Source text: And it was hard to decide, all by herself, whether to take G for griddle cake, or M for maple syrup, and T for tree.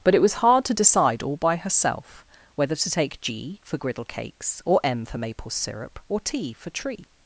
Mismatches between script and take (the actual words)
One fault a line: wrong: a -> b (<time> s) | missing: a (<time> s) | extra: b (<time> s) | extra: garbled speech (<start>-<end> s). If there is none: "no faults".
wrong: And -> But (0.0 s)
wrong: cake -> cakes (4.0 s)
wrong: and -> or (6.1 s)